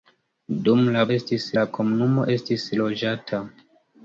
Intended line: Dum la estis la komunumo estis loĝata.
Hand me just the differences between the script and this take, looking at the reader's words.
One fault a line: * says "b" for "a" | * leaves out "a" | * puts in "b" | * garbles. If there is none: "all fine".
all fine